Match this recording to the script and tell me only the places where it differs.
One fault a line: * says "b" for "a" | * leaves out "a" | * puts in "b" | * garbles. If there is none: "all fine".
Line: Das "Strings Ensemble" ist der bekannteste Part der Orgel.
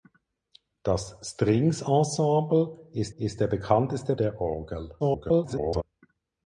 * puts in "ist"
* leaves out "Part"
* garbles